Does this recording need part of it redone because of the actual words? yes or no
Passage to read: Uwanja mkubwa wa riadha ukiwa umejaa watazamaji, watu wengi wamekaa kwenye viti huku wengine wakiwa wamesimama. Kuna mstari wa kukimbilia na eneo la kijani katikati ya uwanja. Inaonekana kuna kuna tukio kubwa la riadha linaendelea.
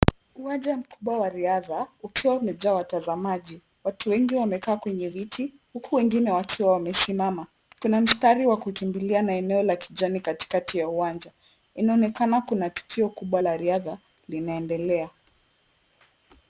yes